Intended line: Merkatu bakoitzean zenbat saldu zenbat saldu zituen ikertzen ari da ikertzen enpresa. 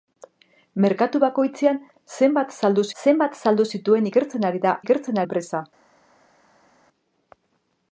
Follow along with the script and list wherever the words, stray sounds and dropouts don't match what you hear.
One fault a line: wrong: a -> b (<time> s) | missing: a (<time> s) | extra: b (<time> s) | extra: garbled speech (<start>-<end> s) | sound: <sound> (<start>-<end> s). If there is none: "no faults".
no faults